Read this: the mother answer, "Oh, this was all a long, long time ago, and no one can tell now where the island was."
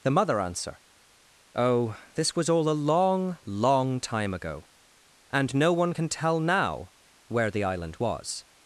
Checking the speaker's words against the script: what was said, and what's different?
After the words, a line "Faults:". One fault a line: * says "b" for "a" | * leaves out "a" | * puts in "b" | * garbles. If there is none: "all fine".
the mother answer, "Oh, this was all a long, long time ago, and no one can tell now where the island was."
Faults:
all fine